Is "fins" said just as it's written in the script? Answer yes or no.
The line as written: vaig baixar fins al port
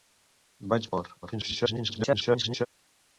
no